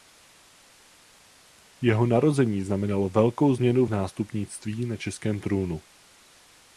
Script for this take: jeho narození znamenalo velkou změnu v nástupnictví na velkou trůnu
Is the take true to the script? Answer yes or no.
no